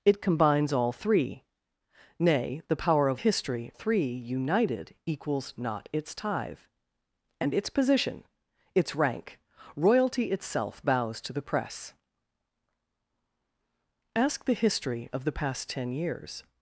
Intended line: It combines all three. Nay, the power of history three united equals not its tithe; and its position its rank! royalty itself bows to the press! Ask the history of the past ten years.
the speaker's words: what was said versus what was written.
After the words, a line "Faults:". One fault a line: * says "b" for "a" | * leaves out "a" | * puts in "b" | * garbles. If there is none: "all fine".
It combines all three. Nay, the power of history three united equals not its tithe; and its position its rank! royalty itself bows to the press! Ask the history of the past ten years.
Faults:
all fine